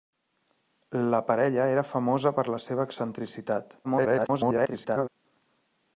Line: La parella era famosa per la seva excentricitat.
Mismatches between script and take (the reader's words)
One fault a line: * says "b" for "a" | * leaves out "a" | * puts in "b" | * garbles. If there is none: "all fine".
* garbles